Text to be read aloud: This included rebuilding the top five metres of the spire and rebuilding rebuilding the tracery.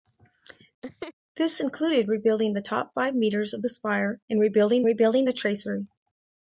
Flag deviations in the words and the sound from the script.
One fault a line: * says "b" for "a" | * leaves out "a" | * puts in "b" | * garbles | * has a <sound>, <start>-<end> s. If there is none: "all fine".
* has a laugh, 0.8-1.1 s